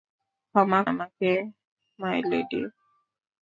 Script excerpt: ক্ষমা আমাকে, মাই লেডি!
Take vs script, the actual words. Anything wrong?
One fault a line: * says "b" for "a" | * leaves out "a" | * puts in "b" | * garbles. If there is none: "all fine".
all fine